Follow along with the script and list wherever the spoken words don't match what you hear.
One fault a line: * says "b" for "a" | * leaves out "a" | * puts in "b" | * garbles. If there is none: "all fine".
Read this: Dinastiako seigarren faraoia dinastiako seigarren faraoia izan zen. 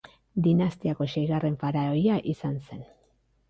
* leaves out "dinastiako seigarren faraoia"